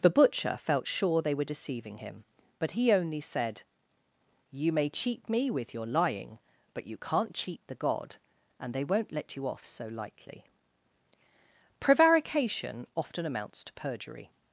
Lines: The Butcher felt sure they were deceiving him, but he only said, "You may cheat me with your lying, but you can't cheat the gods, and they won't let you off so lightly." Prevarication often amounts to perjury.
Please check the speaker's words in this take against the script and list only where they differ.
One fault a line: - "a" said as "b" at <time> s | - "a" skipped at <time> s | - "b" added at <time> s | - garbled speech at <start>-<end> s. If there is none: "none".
- "gods" said as "god" at 7.7 s